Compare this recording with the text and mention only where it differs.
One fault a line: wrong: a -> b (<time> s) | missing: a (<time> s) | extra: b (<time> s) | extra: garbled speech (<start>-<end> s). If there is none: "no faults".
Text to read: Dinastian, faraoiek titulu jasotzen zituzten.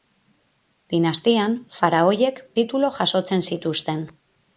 no faults